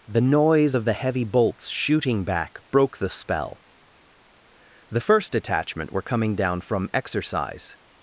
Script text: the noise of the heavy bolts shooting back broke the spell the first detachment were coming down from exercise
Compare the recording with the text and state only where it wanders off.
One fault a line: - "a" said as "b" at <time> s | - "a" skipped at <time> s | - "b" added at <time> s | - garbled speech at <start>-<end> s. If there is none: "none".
none